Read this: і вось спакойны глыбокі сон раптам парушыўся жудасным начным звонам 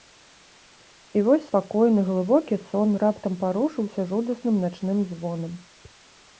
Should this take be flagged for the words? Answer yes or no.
no